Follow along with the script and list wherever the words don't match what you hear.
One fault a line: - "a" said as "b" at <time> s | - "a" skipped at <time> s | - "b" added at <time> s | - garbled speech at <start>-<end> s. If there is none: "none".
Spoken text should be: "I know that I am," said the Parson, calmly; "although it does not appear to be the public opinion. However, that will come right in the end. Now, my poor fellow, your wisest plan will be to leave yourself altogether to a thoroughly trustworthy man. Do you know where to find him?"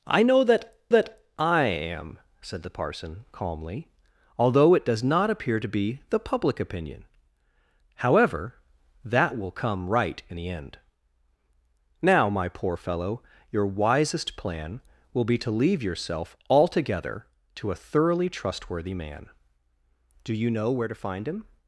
- "that" added at 0.9 s